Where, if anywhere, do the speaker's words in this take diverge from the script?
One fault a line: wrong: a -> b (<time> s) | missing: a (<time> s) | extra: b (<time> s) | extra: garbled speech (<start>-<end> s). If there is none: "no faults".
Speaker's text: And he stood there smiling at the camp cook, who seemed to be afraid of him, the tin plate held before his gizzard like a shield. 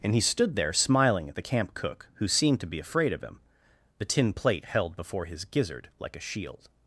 no faults